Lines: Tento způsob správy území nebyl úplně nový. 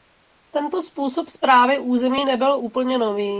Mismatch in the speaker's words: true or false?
false